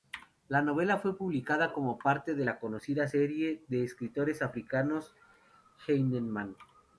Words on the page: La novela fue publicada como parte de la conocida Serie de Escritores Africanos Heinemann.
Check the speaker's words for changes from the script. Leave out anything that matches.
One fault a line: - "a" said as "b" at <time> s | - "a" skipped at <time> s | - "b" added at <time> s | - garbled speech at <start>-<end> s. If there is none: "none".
none